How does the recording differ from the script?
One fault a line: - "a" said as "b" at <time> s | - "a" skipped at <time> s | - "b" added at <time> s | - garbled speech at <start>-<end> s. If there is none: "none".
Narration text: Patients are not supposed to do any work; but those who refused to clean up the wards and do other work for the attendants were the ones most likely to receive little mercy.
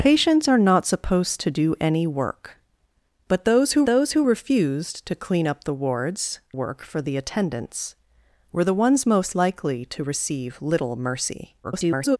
- "those who" added at 3.9 s
- "and do other" skipped at 6.4 s
- garbled speech at 11.6-12.2 s